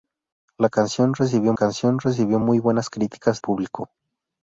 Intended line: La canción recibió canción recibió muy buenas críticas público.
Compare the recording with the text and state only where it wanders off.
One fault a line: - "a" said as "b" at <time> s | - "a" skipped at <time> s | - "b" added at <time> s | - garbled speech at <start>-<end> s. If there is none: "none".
none